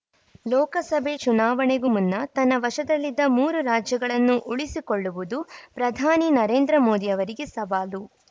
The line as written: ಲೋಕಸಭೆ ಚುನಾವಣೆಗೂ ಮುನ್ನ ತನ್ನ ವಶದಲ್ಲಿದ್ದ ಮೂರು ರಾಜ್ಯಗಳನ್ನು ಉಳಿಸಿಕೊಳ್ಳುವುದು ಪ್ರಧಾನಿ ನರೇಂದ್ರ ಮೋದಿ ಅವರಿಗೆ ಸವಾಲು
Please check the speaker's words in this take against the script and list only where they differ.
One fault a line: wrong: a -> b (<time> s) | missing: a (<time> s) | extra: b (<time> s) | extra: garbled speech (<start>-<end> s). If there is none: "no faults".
no faults